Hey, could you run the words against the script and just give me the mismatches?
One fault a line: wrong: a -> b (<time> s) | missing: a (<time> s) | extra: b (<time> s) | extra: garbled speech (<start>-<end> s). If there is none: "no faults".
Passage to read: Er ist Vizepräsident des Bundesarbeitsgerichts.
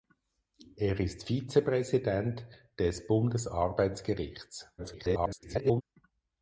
extra: garbled speech (4.8-5.8 s)